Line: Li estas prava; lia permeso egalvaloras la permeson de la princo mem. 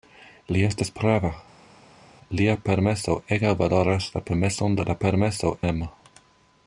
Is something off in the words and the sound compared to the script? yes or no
yes